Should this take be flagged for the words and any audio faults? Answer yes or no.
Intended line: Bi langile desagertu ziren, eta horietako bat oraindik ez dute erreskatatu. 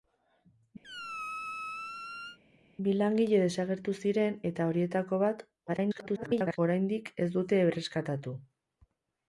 yes